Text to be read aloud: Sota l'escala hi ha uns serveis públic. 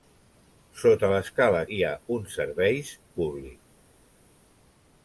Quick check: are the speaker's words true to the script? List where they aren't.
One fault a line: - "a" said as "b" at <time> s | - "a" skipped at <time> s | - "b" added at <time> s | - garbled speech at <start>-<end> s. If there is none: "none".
none